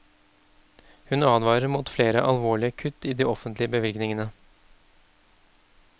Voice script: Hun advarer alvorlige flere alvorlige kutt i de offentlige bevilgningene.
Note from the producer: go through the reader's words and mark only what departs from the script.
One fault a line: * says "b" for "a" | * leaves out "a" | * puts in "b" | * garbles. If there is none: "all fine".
* says "mot" for "alvorlige"